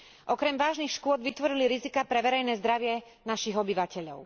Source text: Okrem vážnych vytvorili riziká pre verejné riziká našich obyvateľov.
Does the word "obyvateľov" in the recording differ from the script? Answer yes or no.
no